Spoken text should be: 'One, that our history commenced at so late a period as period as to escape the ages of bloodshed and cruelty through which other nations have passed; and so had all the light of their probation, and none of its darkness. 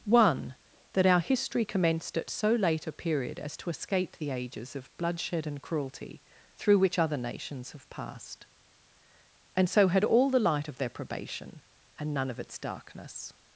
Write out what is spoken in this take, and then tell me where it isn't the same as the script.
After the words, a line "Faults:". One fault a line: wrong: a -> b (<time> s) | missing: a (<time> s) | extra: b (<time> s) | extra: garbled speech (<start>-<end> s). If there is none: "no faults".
'One, that our history commenced at so late a period as to escape the ages of bloodshed and cruelty through which other nations have passed; and so had all the light of their probation, and none of its darkness.
Faults:
missing: period as (3.5 s)